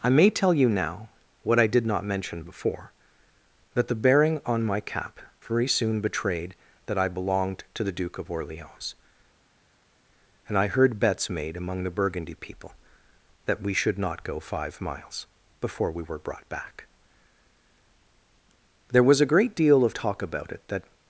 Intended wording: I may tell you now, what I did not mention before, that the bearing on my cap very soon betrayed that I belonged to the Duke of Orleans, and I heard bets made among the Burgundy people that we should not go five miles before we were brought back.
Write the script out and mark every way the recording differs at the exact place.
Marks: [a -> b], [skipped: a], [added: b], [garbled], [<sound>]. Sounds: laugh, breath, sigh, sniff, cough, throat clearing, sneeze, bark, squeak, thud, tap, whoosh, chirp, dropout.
I may tell you now, what I did not mention before, that the bearing on my cap very soon betrayed that I belonged to the Duke of Orleans, and I heard bets made among the Burgundy people that we should not go five miles before we were brought back. [added: There was a great deal of talk about it that]